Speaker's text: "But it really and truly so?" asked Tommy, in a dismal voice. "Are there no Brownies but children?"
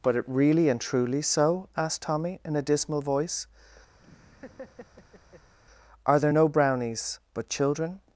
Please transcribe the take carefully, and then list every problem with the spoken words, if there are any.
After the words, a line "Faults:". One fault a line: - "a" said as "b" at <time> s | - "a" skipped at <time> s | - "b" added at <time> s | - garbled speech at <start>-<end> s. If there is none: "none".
"But it really and truly so?" asked Tommy, in a dismal voice. "Are there no Brownies but children?"
Faults:
none